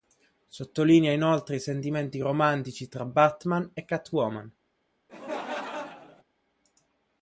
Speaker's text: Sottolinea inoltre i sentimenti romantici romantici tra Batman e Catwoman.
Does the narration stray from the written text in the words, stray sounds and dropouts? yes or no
yes